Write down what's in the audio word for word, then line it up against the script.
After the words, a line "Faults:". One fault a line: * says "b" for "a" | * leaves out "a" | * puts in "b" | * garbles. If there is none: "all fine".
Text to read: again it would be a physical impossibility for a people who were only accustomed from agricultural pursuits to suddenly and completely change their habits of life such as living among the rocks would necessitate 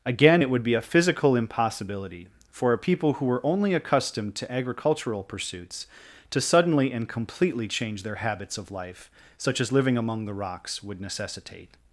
again it would be a physical impossibility for a people who were only accustomed to agricultural pursuits to suddenly and completely change their habits of life such as living among the rocks would necessitate
Faults:
* says "to" for "from"